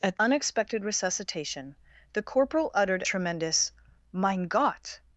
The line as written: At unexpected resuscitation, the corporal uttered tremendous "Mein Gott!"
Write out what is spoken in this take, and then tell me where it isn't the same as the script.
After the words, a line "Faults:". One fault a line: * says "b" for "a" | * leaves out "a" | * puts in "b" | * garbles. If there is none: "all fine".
At unexpected resuscitation, the corporal uttered tremendous "Mein Gott!"
Faults:
all fine